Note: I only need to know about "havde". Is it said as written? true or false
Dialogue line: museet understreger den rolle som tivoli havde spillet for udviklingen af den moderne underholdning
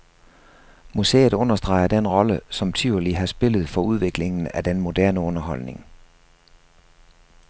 false